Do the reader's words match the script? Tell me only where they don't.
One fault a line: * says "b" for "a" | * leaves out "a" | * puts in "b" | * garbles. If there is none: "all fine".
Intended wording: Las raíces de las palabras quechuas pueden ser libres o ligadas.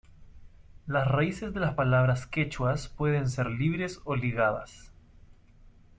all fine